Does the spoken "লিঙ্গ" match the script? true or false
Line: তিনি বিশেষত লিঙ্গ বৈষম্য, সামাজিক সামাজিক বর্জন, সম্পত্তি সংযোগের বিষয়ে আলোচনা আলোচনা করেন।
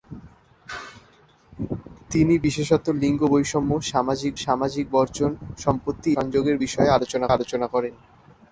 true